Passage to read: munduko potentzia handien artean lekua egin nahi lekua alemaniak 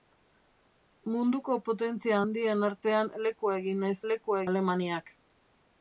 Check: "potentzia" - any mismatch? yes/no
no